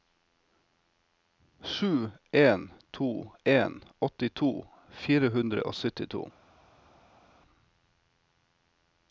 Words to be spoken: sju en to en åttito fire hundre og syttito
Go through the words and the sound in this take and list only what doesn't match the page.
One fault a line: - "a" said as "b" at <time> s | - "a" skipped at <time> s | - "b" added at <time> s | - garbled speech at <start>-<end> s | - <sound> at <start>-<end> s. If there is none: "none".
none